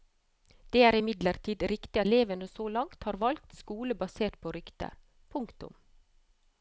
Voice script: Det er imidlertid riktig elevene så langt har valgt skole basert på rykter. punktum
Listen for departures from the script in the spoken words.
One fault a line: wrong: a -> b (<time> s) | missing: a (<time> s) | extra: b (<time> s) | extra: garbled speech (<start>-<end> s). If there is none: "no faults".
no faults